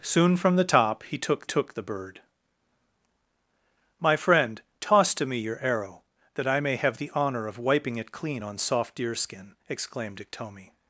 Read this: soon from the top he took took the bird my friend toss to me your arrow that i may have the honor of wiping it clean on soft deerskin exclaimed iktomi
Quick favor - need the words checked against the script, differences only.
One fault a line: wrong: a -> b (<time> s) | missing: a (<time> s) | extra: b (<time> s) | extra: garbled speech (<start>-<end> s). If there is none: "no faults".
no faults